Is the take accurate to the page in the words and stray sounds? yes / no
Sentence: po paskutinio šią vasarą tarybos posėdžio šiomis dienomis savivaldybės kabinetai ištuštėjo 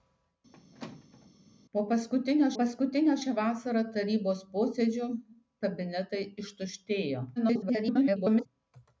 no